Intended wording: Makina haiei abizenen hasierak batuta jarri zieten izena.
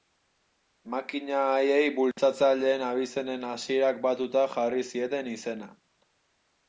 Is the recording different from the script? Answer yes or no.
yes